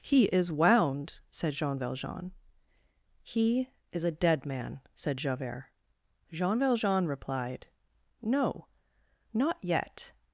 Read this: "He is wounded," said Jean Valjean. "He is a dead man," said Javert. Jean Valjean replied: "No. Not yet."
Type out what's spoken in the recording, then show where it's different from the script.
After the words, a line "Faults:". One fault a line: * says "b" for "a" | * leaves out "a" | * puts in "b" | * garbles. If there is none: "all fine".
"He is wound," said Jean Valjean. "He is a dead man," said Javert. Jean Valjean replied: "No. Not yet."
Faults:
* says "wound" for "wounded"